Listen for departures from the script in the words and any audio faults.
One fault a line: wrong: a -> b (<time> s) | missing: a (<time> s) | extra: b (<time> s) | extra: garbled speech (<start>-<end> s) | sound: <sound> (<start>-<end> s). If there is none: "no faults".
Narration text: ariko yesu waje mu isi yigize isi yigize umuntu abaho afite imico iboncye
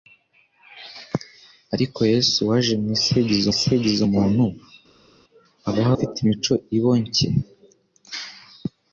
no faults